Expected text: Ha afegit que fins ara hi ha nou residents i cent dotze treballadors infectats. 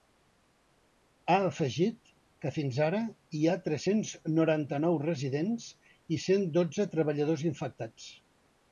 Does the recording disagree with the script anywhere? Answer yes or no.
yes